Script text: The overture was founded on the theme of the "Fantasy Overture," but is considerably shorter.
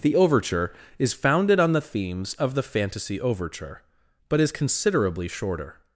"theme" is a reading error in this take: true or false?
true